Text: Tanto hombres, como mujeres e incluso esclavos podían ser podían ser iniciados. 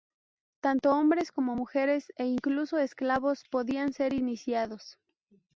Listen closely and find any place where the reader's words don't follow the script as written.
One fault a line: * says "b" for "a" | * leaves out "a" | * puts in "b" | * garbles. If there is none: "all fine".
* leaves out "podían ser"